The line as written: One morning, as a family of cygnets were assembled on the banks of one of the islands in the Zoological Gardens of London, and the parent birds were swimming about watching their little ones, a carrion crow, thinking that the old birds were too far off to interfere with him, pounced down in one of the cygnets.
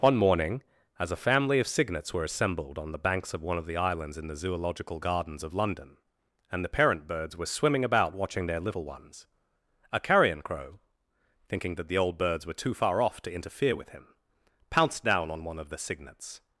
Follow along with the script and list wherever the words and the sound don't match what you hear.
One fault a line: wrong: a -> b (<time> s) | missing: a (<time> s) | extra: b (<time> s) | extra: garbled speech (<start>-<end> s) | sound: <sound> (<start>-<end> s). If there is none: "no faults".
wrong: in -> on (15.3 s)